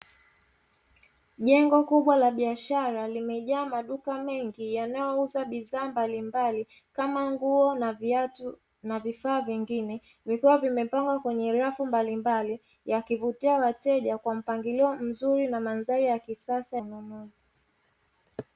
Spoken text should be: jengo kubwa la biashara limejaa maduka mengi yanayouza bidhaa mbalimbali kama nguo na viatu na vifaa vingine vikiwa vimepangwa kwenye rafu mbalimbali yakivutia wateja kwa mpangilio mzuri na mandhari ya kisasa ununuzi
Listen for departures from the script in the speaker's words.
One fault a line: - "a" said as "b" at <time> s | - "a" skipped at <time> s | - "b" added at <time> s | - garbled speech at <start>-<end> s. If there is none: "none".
none